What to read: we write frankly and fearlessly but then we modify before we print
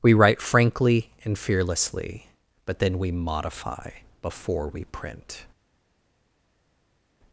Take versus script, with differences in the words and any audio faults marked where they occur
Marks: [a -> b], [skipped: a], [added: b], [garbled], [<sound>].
we write frankly and fearlessly but then we modify before we print